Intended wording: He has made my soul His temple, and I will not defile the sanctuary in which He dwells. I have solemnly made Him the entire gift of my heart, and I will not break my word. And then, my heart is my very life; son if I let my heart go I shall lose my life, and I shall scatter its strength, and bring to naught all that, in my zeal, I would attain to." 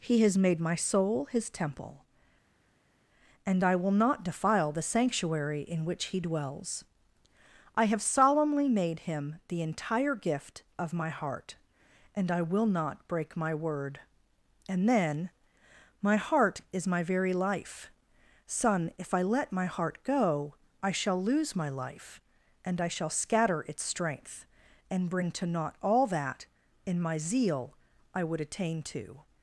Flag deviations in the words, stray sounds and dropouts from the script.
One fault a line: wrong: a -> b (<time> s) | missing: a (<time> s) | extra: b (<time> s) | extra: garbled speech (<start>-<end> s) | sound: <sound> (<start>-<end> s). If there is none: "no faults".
no faults